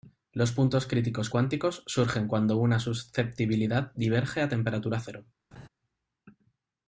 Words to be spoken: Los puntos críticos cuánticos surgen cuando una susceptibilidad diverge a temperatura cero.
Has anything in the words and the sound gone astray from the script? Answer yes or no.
yes